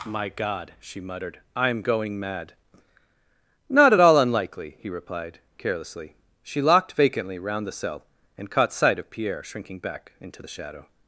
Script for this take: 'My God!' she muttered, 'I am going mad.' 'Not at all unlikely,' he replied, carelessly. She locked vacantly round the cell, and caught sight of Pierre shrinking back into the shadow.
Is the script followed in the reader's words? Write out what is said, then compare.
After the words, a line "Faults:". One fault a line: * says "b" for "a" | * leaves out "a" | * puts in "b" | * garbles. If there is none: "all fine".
'My God!' she muttered, 'I am going mad.' 'Not at all unlikely,' he replied, carelessly. She locked vacantly round the cell, and caught sight of Pierre shrinking back into the shadow.
Faults:
all fine